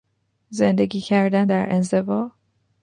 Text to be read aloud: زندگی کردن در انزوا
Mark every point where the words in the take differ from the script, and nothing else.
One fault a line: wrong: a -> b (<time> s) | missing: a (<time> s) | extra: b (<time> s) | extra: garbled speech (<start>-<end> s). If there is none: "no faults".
no faults